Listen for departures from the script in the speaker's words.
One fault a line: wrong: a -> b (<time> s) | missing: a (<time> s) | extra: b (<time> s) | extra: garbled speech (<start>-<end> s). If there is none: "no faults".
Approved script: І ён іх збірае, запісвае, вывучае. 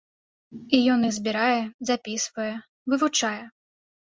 no faults